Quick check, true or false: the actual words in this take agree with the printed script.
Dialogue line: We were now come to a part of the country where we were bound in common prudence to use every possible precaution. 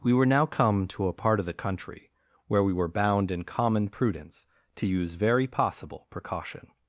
false